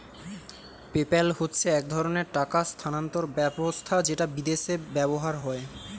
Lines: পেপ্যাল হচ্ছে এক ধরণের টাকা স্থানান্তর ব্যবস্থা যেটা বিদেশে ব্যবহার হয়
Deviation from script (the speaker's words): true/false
false